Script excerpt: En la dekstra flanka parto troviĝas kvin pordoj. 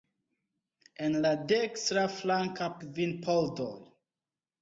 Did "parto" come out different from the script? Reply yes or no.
yes